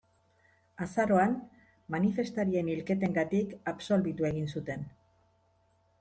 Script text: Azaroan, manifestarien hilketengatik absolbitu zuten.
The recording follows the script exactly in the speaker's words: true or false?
false